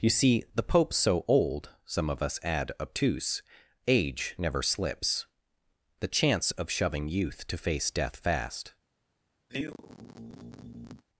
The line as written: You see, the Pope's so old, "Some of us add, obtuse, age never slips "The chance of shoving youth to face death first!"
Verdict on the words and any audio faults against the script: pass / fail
fail